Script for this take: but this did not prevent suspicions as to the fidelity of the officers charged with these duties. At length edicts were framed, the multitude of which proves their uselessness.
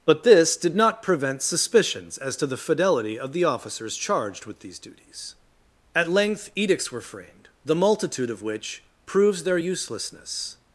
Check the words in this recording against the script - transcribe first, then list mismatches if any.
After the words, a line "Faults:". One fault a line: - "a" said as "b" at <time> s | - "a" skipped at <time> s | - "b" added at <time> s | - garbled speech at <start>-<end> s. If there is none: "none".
but this did not prevent suspicions as to the fidelity of the officers charged with these duties. At length edicts were framed, the multitude of which proves their uselessness.
Faults:
none